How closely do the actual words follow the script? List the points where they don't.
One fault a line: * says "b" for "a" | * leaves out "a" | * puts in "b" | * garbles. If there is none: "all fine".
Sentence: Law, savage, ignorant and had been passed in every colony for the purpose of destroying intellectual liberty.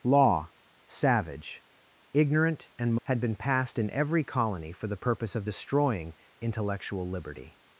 all fine